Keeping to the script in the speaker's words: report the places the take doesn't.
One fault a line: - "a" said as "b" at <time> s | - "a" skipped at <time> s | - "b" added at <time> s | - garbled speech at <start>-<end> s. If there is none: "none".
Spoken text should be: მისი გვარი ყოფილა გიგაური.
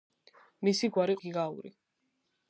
- "ყოფილა" skipped at 1.2 s